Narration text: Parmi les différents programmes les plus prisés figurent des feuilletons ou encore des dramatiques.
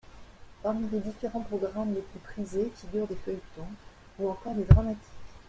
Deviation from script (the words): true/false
false